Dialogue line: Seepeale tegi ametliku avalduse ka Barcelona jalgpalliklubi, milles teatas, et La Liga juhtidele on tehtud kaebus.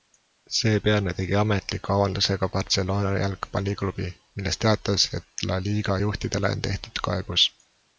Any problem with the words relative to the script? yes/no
no